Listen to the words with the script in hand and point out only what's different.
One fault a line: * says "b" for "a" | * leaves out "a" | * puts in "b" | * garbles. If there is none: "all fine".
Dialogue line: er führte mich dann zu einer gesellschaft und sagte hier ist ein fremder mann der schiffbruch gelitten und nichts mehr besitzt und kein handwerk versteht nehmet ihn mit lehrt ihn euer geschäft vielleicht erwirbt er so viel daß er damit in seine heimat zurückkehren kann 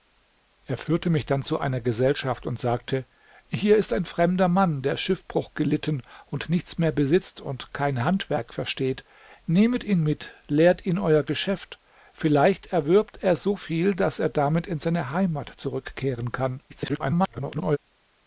* garbles